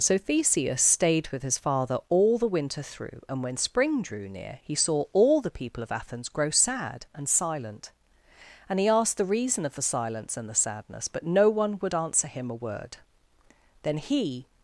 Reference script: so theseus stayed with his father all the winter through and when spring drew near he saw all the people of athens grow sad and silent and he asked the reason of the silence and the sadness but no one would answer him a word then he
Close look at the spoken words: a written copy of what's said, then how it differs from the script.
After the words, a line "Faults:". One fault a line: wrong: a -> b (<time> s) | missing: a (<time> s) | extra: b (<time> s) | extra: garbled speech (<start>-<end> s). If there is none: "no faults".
so theseus stayed with his father all the winter through and when spring drew near he saw all the people of athens grow sad and silent and he asked the reason of the silence and the sadness but no one would answer him a word then he
Faults:
no faults